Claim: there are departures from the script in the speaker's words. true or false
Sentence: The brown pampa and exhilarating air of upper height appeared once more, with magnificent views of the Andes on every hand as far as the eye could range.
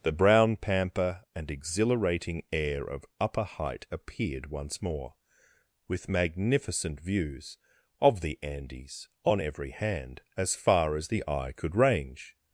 false